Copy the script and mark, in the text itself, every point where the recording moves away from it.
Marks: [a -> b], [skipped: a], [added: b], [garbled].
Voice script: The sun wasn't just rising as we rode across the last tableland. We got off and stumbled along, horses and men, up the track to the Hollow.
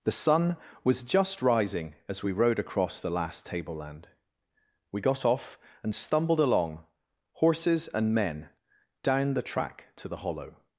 The sun [wasn't -> was] just rising as we rode across the last tableland. We got off and stumbled along, horses and men, [up -> down] the track to the Hollow.